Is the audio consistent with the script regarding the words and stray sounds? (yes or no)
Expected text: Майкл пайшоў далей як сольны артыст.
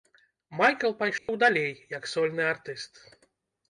no